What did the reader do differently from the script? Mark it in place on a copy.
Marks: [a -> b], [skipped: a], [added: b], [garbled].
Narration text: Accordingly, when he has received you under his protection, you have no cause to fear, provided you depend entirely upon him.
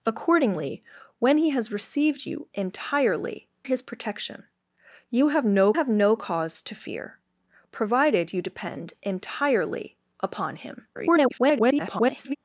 Accordingly, when he has received you [under -> entirely] his protection, you have no [added: have no] cause to fear, provided you depend entirely upon him. [garbled]